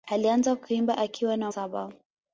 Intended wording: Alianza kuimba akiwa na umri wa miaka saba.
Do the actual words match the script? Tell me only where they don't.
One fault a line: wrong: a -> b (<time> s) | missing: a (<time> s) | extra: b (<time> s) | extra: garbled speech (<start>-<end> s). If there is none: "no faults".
missing: umri wa miaka (1.5 s)